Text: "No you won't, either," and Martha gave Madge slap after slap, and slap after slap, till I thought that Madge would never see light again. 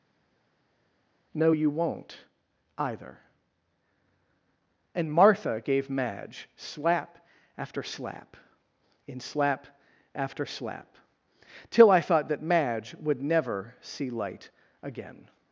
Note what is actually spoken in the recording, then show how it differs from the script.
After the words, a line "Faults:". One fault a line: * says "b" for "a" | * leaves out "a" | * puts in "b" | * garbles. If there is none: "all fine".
"No you won't, either," and Martha gave Madge slap after slap, in slap after slap, till I thought that Madge would never see light again.
Faults:
* says "in" for "and"